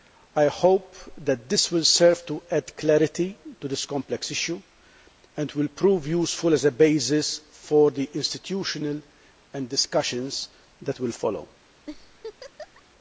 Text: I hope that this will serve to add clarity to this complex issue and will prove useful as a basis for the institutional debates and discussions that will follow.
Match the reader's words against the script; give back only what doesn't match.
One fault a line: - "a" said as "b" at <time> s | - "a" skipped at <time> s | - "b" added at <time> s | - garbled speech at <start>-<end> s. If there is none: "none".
- "debates" skipped at 9.0 s